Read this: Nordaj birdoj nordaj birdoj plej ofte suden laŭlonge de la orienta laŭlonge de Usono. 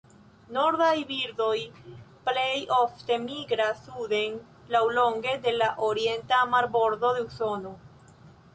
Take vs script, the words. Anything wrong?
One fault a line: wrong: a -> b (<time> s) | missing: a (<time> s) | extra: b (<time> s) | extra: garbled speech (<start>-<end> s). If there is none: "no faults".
missing: nordaj birdoj (1.6 s)
extra: migras (3.3 s)
wrong: laŭlonge -> marbordo (6.6 s)